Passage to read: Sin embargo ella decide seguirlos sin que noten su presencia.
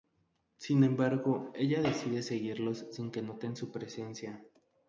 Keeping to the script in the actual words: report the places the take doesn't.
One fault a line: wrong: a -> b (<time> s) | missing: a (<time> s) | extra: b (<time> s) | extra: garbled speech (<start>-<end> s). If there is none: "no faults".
no faults